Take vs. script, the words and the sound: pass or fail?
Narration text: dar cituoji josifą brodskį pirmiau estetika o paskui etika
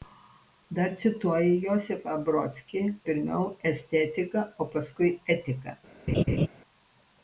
fail